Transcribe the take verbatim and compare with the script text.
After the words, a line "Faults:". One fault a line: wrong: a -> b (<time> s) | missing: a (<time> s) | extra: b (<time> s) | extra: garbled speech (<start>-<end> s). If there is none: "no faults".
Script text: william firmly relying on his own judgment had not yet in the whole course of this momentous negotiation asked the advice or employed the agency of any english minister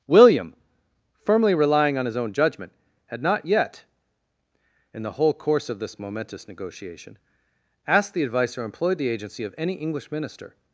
william firmly relying on his own judgment had not yet in the whole course of this momentous negotiation asked the advice or employed the agency of any english minister
Faults:
no faults